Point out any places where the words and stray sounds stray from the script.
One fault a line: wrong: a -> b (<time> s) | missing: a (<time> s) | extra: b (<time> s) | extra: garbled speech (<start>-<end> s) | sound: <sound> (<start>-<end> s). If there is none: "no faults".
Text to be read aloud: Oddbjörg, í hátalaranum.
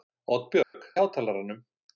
sound: dropout (0.6-0.7 s)